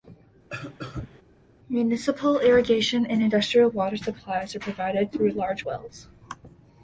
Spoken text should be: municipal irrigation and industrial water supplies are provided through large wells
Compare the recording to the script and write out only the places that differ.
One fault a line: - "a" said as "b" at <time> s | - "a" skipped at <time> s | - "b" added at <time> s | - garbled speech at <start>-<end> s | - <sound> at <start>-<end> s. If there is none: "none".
- cough at 0.5-1.2 s